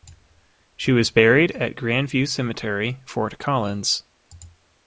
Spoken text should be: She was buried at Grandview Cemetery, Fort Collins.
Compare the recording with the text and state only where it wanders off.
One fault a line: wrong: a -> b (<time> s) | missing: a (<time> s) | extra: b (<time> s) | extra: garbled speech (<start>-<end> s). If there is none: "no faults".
no faults